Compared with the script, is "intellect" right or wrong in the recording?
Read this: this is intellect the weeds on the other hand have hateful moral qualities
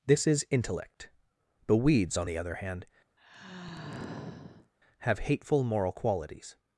right